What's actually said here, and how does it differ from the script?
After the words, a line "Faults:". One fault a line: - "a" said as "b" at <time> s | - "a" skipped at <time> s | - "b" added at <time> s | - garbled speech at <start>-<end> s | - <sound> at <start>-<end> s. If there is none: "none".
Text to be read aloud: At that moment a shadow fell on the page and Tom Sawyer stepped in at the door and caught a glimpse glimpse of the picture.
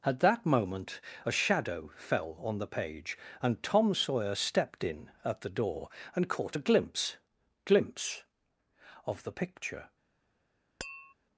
At that moment a shadow fell on the page and Tom Sawyer stepped in at the door and caught a glimpse glimpse of the picture.
Faults:
- tap at 10.8-11.1 s